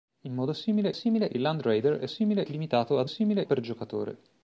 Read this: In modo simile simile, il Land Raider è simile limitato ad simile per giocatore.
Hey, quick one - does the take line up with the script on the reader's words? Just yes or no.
yes